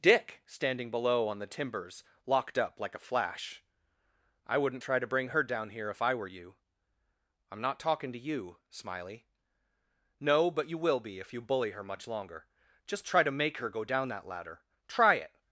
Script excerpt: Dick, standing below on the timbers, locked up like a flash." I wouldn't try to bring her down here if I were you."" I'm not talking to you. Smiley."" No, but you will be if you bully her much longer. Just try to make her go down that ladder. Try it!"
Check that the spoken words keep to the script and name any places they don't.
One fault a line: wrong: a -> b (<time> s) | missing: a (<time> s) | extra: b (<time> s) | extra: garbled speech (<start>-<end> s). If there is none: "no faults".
no faults